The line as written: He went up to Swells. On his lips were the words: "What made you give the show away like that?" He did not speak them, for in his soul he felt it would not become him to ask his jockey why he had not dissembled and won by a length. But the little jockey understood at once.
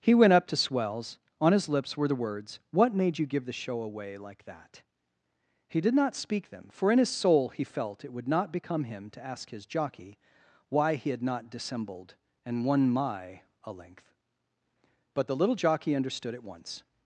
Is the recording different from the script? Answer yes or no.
yes